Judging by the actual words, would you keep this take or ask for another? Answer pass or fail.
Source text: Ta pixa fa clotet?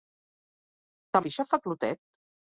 pass